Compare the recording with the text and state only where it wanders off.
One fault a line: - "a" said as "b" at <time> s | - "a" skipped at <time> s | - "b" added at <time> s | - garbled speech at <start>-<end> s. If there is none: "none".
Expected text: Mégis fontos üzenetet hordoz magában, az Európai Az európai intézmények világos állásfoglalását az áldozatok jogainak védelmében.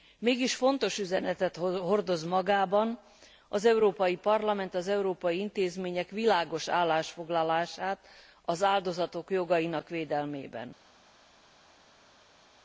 - "Parlament" added at 4.2 s